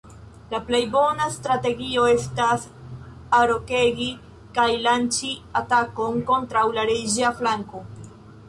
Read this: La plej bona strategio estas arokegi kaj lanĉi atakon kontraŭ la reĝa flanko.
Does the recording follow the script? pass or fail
pass